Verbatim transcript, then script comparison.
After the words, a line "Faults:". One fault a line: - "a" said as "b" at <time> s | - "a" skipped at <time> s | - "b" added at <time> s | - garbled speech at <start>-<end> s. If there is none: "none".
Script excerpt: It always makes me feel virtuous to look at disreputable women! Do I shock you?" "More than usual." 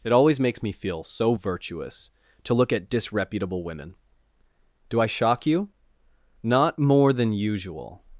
It always makes me feel so virtuous to look at disreputable women! Do I shock you?" "Not more than usual."
Faults:
- "so" added at 1.0 s
- "Not" added at 6.4 s